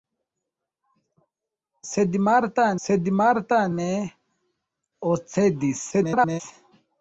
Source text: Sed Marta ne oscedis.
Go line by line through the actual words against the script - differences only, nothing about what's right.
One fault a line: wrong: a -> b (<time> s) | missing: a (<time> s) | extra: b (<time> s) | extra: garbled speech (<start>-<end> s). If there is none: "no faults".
extra: sed Marta (2.8 s)
extra: garbled speech (5.9-6.4 s)